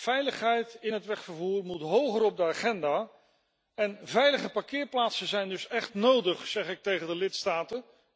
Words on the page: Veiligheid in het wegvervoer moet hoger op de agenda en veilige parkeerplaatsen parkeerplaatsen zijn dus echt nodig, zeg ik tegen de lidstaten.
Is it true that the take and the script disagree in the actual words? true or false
true